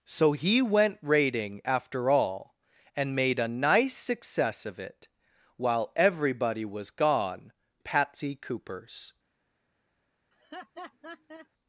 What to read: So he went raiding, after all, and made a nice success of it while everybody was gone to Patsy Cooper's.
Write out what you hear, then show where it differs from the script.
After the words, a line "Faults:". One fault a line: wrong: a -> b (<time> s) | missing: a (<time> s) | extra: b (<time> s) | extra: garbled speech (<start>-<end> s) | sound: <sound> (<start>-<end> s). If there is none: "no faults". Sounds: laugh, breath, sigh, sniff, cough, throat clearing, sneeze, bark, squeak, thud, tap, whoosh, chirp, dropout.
So he went raiding, after all, and made a nice success of it while everybody was gone Patsy Cooper's.
Faults:
missing: to (7.5 s)
sound: laugh (10.3-11.5 s)